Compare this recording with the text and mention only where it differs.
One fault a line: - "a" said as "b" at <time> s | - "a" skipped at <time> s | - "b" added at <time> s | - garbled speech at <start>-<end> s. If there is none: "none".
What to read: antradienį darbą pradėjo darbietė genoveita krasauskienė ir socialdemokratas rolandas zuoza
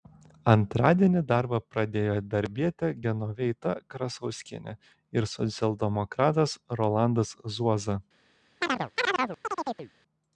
none